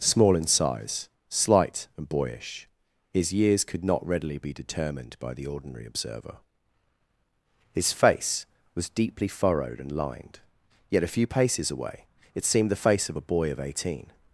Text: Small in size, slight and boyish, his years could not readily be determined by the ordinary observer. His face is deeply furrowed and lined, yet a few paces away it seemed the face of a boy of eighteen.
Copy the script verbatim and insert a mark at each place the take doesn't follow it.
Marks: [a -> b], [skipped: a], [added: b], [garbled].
Small in size, slight and boyish, his years could not readily be determined by the ordinary observer. His face [is -> was] deeply furrowed and lined, yet a few paces away it seemed the face of a boy of eighteen.